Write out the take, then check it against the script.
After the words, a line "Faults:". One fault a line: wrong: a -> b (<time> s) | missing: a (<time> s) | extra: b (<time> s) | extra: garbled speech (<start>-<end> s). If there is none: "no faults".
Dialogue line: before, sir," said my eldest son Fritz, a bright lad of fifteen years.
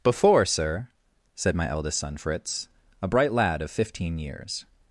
before, sir," said my eldest son Fritz, a bright lad of fifteen years.
Faults:
no faults